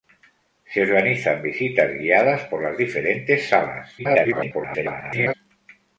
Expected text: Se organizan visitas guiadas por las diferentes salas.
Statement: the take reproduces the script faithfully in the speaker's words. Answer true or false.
false